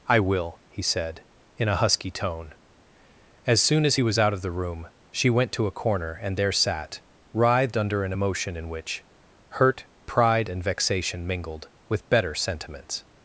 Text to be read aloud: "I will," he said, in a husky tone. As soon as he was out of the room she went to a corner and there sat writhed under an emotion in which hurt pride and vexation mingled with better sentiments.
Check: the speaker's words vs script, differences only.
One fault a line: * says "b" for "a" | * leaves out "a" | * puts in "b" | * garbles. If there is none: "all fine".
all fine